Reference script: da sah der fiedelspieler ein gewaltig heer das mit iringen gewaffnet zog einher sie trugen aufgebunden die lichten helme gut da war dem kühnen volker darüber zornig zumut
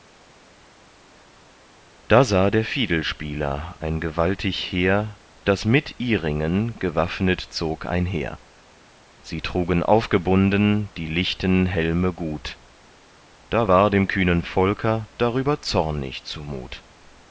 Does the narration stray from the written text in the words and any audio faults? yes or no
no